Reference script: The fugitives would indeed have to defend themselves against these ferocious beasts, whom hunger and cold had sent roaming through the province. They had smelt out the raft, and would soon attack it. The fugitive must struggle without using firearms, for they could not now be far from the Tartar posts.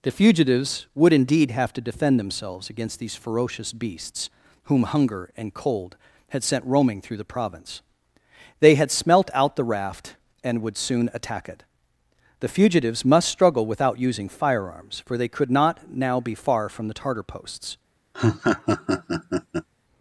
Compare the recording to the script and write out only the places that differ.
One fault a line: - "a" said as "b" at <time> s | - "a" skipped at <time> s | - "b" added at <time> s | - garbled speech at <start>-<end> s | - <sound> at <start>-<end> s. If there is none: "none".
- "fugitive" said as "fugitives" at 12.5 s
- laugh at 18.1-19.7 s